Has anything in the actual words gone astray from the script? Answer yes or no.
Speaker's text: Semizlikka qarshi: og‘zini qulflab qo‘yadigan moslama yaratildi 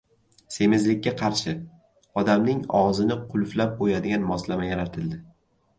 yes